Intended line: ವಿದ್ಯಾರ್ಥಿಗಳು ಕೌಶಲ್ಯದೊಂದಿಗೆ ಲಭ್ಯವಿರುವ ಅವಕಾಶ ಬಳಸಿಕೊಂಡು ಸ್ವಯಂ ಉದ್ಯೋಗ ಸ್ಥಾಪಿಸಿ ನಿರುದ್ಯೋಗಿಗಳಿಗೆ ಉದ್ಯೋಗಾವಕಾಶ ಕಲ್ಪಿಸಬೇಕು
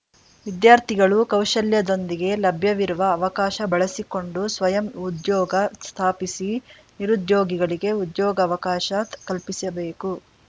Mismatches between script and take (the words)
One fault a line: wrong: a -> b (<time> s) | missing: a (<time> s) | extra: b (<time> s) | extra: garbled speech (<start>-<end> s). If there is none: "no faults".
no faults